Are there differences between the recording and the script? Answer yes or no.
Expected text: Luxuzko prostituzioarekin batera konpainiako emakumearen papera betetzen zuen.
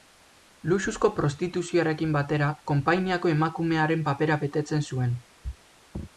no